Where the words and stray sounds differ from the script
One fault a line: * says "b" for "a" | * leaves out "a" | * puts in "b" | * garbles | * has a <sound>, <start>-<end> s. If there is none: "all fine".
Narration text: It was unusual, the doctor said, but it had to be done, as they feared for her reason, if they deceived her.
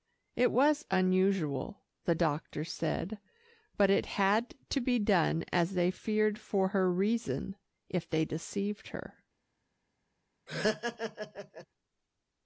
* has a laugh, 10.5-11.7 s